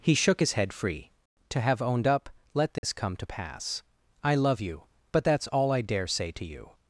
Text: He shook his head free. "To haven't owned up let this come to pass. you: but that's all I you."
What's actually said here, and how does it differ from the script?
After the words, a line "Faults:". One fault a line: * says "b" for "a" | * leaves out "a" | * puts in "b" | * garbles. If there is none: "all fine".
He shook his head free. "To have owned up let this come to pass. I love you: but that's all I dare say to you."
Faults:
* says "have" for "haven't"
* puts in "I love"
* puts in "dare say to"